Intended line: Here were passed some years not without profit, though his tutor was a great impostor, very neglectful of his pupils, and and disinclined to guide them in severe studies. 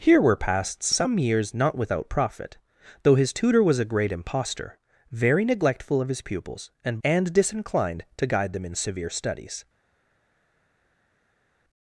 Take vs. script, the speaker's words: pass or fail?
pass